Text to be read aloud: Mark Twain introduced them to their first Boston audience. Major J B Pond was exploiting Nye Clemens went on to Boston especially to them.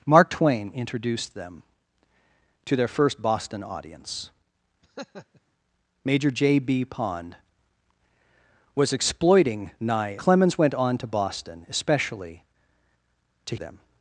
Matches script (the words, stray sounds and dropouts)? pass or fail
fail